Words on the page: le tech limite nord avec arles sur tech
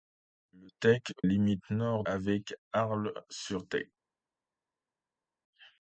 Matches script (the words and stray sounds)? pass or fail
pass